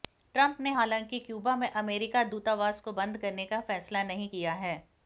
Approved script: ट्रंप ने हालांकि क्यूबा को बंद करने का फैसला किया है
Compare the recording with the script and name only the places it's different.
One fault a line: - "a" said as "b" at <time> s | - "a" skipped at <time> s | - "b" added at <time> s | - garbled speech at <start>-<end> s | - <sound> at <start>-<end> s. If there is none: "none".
- "में अमेरिकी दूतावास" added at 1.6 s
- "नहीं" added at 4.1 s